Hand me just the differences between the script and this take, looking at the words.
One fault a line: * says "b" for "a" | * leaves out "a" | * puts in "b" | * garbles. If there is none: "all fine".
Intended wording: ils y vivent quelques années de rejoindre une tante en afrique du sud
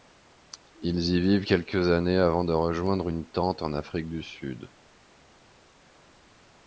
* puts in "avant"